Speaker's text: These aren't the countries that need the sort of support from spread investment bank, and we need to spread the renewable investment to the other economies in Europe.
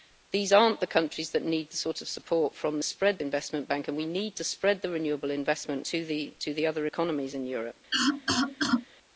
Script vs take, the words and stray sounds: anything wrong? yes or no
yes